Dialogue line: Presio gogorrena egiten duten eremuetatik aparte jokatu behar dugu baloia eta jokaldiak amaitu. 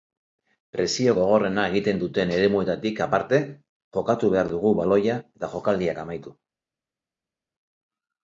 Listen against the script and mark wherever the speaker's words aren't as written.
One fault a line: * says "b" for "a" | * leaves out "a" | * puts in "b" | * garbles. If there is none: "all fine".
all fine